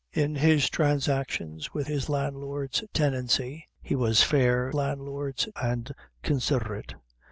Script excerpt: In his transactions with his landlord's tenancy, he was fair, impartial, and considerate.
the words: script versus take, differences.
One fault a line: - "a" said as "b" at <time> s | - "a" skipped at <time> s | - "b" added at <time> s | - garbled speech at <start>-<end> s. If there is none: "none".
- "impartial" said as "landlord's" at 4.7 s